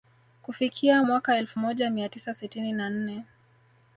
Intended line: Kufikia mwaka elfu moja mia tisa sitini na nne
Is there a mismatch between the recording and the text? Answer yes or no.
no